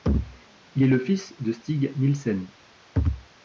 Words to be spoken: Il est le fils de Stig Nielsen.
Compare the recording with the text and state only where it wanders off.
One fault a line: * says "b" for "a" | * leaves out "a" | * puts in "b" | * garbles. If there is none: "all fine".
all fine